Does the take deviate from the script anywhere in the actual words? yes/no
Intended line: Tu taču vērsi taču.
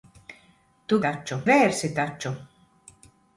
no